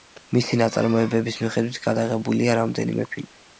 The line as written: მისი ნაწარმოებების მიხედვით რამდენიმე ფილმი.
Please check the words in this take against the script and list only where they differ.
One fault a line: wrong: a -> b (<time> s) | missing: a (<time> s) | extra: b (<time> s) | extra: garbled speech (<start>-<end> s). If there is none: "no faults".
extra: გადაღებულია (1.9 s)